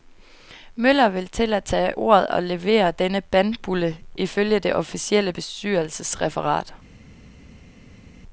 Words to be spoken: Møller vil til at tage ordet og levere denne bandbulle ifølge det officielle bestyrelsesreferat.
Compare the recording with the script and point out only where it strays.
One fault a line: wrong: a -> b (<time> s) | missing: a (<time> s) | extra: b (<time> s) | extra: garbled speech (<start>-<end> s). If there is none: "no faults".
no faults